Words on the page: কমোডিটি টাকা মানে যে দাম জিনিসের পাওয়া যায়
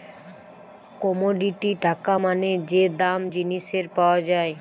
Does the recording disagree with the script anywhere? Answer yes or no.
no